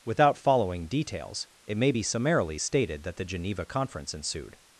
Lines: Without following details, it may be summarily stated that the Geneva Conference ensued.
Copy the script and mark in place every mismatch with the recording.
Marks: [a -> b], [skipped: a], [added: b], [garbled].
Without following details, it may be summarily stated that the Geneva Conference ensued.